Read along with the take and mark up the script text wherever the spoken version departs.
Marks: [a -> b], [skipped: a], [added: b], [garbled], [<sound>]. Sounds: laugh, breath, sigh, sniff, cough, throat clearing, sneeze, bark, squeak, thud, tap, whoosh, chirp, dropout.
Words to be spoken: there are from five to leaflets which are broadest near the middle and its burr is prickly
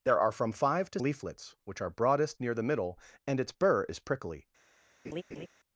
there are from five to leaflets which are broadest near the middle and its burr is prickly [laugh]